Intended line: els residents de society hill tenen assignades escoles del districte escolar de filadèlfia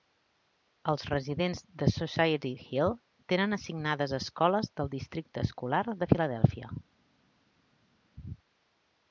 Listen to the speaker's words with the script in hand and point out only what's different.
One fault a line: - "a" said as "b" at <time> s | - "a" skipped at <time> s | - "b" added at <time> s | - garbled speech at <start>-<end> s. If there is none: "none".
none